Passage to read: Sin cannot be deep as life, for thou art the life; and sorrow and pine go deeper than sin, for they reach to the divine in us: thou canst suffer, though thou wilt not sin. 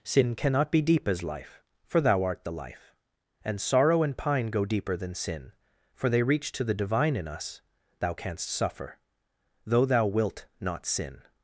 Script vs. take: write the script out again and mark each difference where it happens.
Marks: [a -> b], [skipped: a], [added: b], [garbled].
Sin cannot be deep as life, for thou art the life; and sorrow and pine go deeper than sin, for they reach to the divine in us: thou canst suffer, though thou wilt not sin.